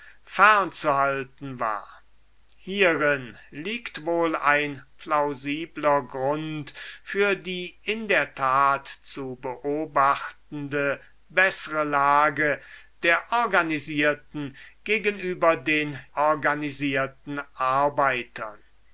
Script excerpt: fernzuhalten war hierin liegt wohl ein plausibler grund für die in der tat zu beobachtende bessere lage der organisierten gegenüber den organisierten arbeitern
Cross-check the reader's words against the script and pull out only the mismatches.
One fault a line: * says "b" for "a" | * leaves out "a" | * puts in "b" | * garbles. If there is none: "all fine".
all fine